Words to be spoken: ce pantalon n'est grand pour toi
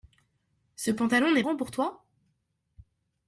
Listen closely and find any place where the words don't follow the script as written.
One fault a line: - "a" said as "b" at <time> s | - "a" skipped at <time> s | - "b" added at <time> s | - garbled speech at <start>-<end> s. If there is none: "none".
none